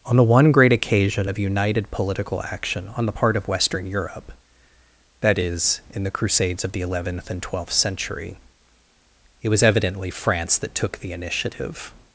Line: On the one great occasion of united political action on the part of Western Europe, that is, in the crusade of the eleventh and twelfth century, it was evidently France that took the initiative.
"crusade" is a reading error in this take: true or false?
true